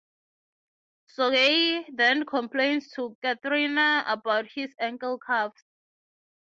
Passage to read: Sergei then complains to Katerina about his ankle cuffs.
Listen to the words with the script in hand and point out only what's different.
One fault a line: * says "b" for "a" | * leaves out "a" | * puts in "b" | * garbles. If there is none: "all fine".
all fine